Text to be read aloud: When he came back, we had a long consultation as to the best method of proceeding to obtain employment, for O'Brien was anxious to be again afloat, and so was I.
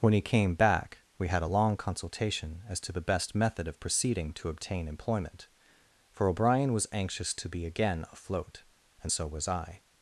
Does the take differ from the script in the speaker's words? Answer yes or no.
no